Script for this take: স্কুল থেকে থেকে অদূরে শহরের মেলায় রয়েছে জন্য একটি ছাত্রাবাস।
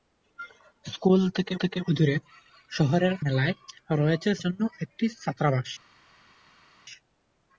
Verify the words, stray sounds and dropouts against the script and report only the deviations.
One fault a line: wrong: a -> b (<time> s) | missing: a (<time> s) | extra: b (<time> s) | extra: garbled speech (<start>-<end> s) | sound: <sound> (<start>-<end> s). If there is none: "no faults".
no faults